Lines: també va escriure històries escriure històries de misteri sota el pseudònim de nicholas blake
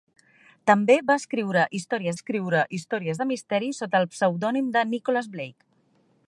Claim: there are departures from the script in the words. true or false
false